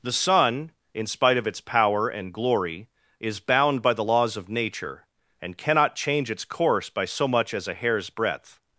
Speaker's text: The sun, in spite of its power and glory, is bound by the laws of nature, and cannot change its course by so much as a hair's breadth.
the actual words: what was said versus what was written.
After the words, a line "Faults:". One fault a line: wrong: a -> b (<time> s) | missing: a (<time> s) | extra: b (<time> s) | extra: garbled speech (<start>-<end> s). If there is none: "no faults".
The sun, in spite of its power and glory, is bound by the laws of nature, and cannot change its course by so much as a hair's breadth.
Faults:
no faults